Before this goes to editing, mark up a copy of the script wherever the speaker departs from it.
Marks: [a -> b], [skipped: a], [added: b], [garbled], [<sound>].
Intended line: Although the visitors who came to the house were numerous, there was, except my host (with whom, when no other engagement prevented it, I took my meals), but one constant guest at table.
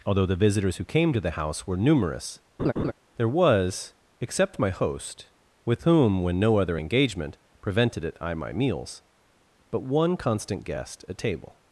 Although the visitors who came to the house were numerous, [laugh] there was, except my host (with whom, when no other engagement prevented it, I [skipped: took] my meals), but one constant guest at table.